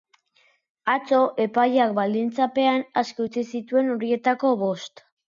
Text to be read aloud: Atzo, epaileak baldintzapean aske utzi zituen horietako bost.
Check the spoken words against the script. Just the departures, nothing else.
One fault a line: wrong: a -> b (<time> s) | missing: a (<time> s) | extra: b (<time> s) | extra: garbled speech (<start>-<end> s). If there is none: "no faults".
no faults